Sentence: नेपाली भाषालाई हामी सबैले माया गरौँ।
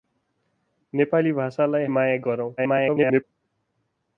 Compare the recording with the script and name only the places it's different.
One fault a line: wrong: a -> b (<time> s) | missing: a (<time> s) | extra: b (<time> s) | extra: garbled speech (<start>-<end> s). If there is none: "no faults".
missing: हामी सबैले (1.9 s)
extra: garbled speech (2.6-3.2 s)